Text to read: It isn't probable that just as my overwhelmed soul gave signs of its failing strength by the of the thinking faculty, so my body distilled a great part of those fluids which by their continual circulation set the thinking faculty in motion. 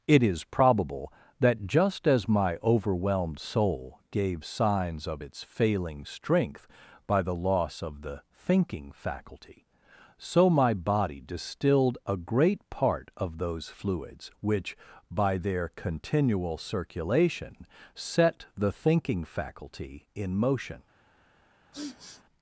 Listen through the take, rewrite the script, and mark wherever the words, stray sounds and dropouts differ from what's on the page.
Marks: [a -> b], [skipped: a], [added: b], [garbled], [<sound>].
It [isn't -> is] probable that just as my overwhelmed soul gave signs of its failing strength by the [added: loss] of the thinking faculty, so my body distilled a great part of those fluids which by their continual circulation set the thinking faculty in motion. [sniff]